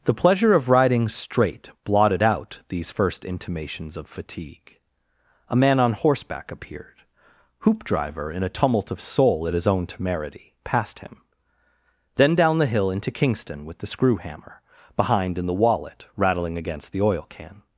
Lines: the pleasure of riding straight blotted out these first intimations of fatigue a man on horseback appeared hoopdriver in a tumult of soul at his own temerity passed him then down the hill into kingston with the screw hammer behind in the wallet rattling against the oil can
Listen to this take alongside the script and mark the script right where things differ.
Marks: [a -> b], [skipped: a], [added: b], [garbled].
the pleasure of riding straight blotted out these first intimations of fatigue a man on horseback appeared hoopdriver in a tumult of soul at his own temerity passed him then down the hill into kingston with the screw hammer behind in the wallet rattling against the oil can